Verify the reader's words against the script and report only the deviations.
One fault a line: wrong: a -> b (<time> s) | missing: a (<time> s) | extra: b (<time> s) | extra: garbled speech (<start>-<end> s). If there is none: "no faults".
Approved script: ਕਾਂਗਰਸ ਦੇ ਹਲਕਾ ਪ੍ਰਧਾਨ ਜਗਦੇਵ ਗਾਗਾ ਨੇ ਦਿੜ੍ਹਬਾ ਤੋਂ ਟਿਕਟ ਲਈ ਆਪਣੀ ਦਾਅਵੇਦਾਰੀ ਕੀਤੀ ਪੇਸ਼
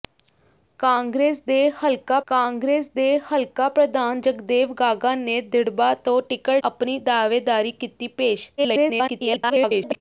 extra: ਕਾਂਗਰਸ ਦੇ ਹਲਕਾ (2.3 s)
missing: ਲਈ (6.6 s)
extra: garbled speech (8.6-10.0 s)